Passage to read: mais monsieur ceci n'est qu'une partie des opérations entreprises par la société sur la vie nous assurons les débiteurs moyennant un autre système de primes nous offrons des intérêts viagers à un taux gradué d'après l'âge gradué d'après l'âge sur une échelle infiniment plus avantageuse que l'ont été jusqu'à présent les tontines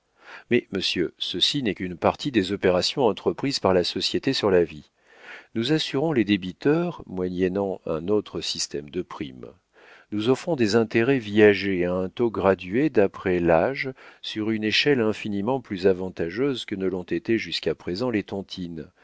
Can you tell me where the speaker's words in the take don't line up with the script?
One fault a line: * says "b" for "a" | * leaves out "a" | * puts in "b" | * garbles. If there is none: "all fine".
* leaves out "gradué d'après l'âge"
* puts in "ne"